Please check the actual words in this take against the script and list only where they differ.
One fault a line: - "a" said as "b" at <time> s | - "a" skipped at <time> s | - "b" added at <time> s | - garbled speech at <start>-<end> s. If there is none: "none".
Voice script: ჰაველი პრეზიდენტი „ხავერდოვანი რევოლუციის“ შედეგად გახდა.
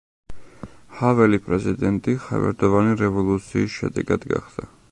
none